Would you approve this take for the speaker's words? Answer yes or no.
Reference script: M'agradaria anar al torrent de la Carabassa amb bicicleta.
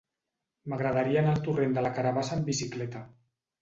yes